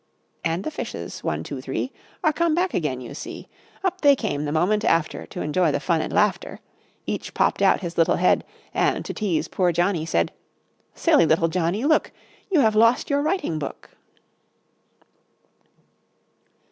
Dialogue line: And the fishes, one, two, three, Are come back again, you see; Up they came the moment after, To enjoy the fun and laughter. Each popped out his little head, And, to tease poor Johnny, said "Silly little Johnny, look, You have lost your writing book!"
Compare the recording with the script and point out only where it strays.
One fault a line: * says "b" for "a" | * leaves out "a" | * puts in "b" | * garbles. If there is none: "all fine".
all fine